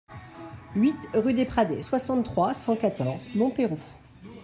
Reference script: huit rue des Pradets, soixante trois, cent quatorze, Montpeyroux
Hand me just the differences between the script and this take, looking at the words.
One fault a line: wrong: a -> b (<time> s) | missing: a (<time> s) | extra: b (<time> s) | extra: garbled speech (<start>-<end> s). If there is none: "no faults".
no faults